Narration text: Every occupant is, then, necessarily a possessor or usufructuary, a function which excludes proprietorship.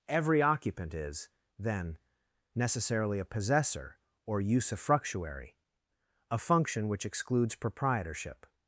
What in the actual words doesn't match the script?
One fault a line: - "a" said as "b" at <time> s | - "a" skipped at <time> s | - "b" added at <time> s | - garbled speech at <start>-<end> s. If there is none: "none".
none